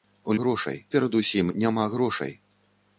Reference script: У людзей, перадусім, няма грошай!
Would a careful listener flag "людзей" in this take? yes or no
yes